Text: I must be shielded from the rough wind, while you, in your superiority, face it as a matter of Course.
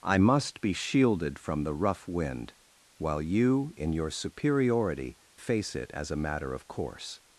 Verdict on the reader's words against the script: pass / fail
pass